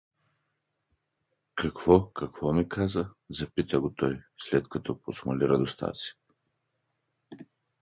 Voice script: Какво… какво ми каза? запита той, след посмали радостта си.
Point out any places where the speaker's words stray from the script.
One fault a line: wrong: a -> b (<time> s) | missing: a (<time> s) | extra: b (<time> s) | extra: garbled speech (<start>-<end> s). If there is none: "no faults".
extra: го (3.8 s)
extra: като (4.7 s)